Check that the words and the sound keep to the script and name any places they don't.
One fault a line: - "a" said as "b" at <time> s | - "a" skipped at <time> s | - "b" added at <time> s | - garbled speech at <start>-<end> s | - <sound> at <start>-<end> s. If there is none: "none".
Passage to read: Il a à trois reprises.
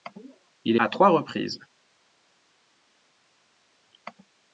none